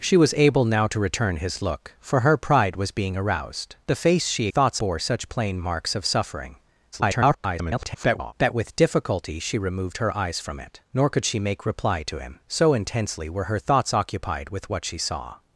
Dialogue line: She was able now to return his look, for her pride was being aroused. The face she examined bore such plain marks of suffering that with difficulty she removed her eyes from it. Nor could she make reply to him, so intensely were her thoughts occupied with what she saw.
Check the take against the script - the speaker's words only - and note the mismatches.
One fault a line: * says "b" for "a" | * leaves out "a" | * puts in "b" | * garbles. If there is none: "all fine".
* says "thoughts" for "examined"
* garbles